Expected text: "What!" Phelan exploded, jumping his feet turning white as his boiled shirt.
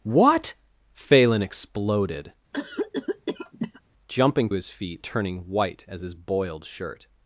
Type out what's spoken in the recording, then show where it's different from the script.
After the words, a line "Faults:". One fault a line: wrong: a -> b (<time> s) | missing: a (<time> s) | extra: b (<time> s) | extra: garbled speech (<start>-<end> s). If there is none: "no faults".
"What!" Phelan exploded, jumping his feet turning white as his boiled shirt.
Faults:
no faults